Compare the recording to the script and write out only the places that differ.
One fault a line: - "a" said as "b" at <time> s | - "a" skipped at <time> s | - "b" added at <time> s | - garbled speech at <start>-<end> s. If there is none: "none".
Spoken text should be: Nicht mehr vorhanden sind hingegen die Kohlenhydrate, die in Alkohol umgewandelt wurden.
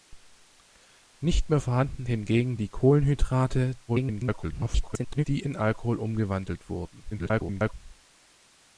- "sind" skipped at 2.0 s
- garbled speech at 3.9-5.2 s
- garbled speech at 7.1-7.7 s